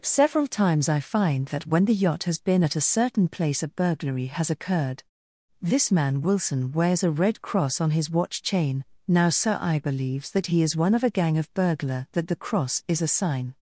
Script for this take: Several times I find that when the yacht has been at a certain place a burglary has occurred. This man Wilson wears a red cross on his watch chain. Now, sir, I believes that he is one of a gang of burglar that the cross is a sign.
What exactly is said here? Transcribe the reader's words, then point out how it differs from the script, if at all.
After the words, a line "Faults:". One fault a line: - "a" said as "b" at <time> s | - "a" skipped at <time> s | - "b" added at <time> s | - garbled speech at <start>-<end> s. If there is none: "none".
Several times I find that when the yacht has been at a certain place a burglary has occurred. This man Wilson wears a red cross on his watch chain. Now, sir, I believes that he is one of a gang of burglar that the cross is a sign.
Faults:
none